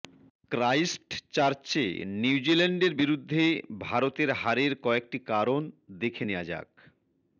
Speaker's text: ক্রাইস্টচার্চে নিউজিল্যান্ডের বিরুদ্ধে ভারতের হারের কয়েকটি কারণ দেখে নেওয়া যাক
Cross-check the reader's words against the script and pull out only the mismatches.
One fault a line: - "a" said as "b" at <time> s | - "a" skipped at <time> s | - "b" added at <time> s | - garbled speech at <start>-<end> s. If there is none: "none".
none